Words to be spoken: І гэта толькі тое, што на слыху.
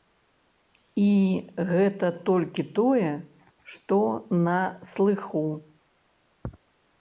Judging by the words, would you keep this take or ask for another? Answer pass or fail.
pass